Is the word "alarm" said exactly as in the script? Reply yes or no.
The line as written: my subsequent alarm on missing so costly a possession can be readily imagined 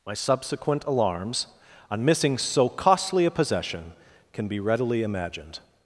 no